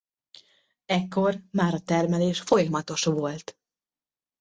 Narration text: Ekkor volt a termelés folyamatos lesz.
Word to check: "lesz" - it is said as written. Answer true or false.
false